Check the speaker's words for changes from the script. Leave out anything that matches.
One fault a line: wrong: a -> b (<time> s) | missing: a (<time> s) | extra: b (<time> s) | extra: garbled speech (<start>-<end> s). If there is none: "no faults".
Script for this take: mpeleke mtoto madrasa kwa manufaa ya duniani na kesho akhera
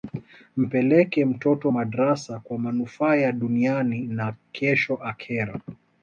no faults